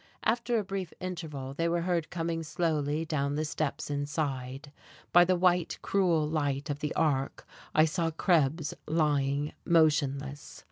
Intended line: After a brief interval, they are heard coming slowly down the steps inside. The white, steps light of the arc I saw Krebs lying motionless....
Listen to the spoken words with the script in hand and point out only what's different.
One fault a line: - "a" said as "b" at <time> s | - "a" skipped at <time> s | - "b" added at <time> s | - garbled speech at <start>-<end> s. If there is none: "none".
- "are" said as "were" at 1.7 s
- "By" added at 5.1 s
- "steps" said as "cruel" at 5.8 s